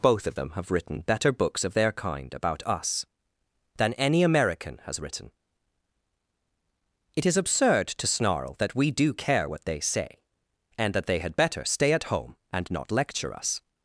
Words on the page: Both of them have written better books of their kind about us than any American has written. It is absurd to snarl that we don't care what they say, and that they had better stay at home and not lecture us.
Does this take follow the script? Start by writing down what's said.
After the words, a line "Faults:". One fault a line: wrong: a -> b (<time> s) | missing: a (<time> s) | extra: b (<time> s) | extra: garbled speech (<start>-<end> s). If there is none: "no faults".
Both of them have written better books of their kind about us than any American has written. It is absurd to snarl that we do care what they say, and that they had better stay at home and not lecture us.
Faults:
wrong: don't -> do (8.9 s)